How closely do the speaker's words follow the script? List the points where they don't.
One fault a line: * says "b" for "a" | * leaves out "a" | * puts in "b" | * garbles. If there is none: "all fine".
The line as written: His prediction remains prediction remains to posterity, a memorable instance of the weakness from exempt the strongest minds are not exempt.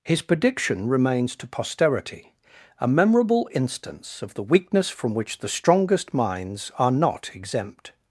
* leaves out "prediction remains"
* says "which" for "exempt"